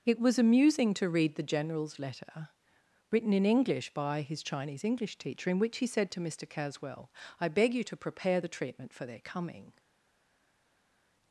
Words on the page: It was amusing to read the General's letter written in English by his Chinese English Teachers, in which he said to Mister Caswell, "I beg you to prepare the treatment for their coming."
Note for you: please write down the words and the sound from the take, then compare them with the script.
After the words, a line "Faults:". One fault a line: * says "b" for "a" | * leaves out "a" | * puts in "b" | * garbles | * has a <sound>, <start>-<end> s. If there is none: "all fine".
It was amusing to read the General's letter written in English by his Chinese English Teacher, in which he said to Mister Caswell, "I beg you to prepare the treatment for their coming."
Faults:
* says "Teacher" for "Teachers"